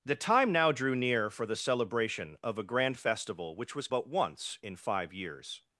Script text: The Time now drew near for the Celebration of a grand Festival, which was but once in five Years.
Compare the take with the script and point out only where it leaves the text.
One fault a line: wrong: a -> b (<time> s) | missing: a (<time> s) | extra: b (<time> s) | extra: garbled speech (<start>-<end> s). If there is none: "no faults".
no faults